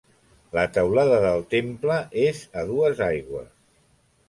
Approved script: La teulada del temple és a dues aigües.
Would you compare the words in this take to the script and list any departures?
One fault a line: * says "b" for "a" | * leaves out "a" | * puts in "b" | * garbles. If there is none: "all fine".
all fine